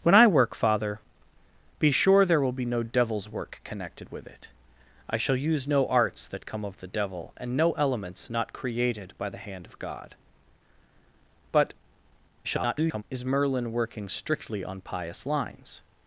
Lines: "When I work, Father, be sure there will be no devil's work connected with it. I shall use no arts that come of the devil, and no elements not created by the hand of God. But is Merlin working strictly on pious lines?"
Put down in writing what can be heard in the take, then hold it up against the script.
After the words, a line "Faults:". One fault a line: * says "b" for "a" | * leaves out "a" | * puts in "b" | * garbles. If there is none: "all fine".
"When I work, Father, be sure there will be no devil's work connected with it. I shall use no arts that come of the devil, and no elements not created by the hand of God. But [garbled] is Merlin working strictly on pious lines?"
Faults:
* garbles